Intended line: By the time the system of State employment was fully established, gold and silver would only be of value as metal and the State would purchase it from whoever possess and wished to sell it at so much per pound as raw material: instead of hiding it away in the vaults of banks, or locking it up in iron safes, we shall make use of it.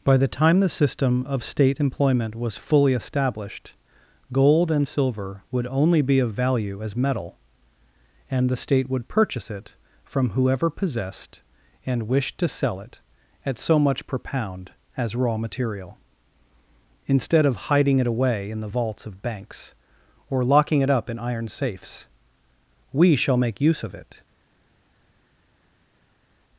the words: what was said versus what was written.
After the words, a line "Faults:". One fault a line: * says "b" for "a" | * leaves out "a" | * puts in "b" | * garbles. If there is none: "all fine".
By the time the system of State employment was fully established, gold and silver would only be of value as metal and the State would purchase it from whoever possessed and wished to sell it at so much per pound as raw material: instead of hiding it away in the vaults of banks, or locking it up in iron safes, we shall make use of it.
Faults:
* says "possessed" for "possess"